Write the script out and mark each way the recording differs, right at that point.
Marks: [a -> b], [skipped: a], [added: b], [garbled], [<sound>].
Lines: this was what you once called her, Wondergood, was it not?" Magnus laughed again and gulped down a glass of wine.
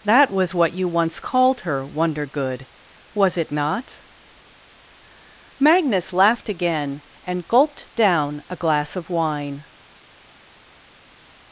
[this -> that] was what you once called her, Wondergood, was it not?" Magnus laughed again and gulped down a glass of wine.